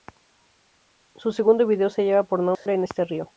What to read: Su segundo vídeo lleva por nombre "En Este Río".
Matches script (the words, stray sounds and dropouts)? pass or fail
fail